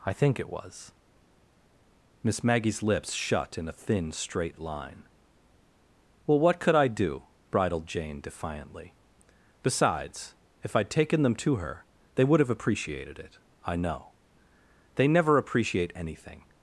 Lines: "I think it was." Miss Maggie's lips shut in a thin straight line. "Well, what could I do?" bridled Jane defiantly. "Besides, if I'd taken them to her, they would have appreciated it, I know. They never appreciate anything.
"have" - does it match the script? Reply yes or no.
yes